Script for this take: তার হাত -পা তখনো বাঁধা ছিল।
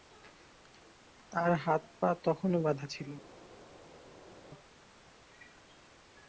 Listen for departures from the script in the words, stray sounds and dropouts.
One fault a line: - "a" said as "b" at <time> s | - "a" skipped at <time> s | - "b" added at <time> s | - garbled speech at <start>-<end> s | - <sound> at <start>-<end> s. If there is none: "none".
none